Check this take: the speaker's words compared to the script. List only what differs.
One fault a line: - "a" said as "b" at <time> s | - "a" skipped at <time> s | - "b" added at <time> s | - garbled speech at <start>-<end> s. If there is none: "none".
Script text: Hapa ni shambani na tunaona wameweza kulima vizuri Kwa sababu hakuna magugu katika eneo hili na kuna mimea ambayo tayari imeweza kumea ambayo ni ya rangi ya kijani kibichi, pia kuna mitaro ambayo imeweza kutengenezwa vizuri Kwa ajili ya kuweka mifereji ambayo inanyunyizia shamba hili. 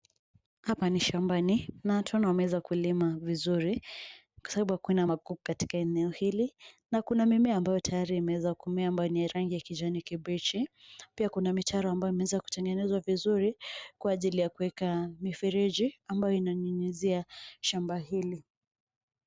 none